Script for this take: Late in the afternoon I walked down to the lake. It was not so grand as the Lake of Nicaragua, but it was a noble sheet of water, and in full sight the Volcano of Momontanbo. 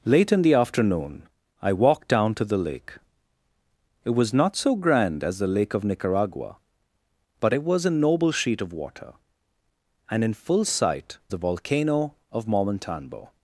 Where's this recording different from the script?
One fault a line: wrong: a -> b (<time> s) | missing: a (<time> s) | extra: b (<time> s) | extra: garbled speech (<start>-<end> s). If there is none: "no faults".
no faults